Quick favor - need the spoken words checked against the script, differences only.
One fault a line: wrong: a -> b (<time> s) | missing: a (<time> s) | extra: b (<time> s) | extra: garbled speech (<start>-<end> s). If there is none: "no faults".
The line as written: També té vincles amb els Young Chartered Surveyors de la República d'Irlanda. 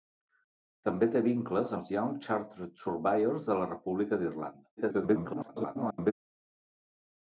missing: amb (1.7 s)
extra: garbled speech (4.8-6.1 s)